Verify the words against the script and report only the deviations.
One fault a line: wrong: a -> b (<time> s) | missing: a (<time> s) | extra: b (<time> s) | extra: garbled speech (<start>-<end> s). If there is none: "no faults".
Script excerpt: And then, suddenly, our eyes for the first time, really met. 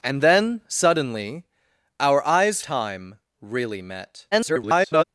missing: for the first (2.6 s)
extra: garbled speech (4.3-5.0 s)